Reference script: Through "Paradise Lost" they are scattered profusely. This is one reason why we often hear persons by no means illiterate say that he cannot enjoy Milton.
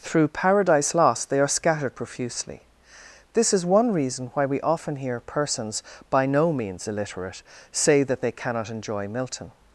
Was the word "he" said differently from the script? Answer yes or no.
yes